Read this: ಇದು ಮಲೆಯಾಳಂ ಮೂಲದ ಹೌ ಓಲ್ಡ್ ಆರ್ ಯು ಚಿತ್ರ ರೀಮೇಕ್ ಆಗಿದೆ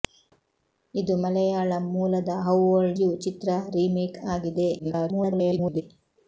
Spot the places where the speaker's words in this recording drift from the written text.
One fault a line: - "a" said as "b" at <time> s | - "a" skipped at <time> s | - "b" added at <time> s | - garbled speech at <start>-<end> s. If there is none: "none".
- "ಆರ್" skipped at 3.0 s
- garbled speech at 4.8-5.8 s